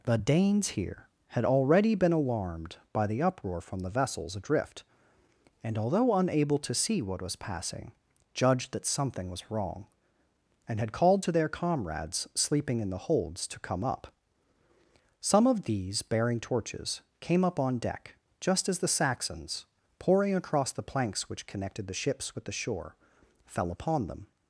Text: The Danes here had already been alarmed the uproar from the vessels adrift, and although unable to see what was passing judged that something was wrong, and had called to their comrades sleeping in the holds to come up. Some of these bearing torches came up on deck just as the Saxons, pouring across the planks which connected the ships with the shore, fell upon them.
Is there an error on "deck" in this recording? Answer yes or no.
no